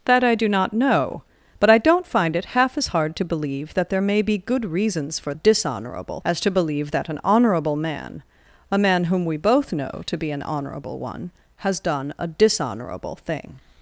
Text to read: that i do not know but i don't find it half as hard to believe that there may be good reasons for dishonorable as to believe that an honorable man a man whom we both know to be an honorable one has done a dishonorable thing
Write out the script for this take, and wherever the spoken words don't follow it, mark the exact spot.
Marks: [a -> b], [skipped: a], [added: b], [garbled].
that i do not know but i don't find it half as hard to believe that there may be good reasons for dishonorable as to believe that an honorable man a man whom we both know to be an honorable one has done a dishonorable thing